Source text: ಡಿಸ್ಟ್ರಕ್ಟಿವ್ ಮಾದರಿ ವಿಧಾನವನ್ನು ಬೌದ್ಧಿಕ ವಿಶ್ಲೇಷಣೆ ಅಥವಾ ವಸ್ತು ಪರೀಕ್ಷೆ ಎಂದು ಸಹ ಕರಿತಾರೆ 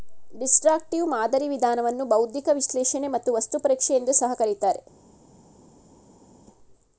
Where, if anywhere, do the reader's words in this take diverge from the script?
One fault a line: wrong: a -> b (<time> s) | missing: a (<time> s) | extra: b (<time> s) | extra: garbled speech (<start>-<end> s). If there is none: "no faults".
wrong: ಅಥವಾ -> ಮತ್ತು (3.1 s)